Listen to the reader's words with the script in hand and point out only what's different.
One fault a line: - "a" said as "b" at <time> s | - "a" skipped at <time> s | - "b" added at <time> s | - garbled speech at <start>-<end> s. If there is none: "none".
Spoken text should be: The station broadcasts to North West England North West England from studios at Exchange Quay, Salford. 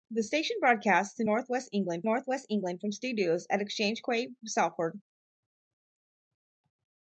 none